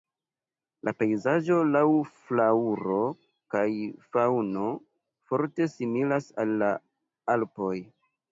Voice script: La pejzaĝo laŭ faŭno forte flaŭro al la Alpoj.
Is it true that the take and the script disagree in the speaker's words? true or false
true